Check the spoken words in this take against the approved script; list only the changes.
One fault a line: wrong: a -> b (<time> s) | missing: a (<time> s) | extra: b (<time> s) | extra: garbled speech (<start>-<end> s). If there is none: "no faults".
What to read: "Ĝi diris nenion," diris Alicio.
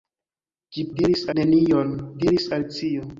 no faults